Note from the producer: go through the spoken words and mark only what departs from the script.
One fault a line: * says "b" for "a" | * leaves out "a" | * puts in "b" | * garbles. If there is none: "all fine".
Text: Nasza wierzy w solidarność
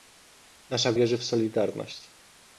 all fine